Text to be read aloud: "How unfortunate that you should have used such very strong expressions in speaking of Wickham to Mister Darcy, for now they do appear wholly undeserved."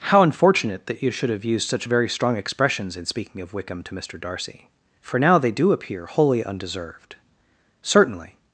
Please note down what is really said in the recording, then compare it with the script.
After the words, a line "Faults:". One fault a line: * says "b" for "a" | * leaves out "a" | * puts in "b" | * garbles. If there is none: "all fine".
"How unfortunate that you should have used such very strong expressions in speaking of Wickham to Mister Darcy, for now they do appear wholly undeserved." "Certainly
Faults:
* puts in "Certainly"